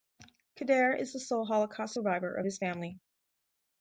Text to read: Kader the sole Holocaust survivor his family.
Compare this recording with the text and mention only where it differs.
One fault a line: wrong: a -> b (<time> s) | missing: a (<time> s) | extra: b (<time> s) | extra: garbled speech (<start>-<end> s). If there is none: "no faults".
extra: is (1.0 s)
extra: of (2.3 s)